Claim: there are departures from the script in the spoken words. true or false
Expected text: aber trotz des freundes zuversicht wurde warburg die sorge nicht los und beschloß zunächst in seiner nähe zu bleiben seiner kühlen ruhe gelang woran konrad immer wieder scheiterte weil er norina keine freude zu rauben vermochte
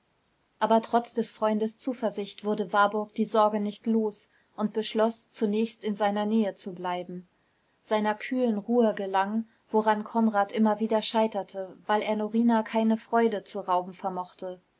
false